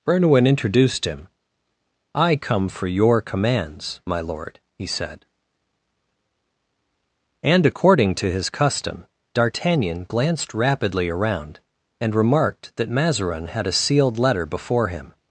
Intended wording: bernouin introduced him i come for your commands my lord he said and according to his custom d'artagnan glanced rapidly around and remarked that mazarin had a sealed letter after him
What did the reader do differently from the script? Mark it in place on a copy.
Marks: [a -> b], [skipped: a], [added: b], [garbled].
bernouin introduced him i come for your commands my lord he said and according to his custom d'artagnan glanced rapidly around and remarked that mazarin had a sealed letter [after -> before] him